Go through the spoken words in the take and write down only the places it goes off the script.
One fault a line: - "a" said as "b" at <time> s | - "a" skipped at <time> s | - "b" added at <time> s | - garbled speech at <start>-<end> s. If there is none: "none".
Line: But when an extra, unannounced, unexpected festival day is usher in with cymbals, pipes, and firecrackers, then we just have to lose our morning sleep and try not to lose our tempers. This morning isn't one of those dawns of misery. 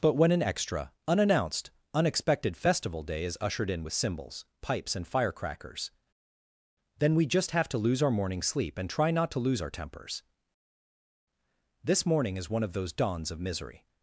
- "usher" said as "ushered" at 3.4 s
- "isn't" said as "is" at 12.4 s